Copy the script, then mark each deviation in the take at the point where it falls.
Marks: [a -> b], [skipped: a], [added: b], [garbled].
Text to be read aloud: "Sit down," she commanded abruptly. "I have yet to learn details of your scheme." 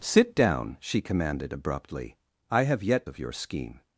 "Sit down," she commanded abruptly. "I have yet [skipped: to learn details] of your scheme."